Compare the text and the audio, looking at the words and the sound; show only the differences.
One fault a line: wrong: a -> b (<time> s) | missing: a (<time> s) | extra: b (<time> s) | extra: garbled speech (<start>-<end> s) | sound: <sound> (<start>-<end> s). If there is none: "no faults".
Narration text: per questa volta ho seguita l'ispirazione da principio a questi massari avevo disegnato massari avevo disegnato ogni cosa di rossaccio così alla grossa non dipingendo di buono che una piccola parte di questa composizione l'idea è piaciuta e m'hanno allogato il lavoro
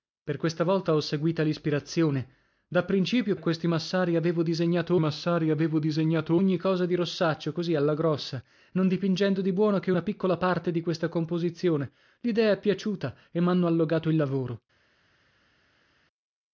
no faults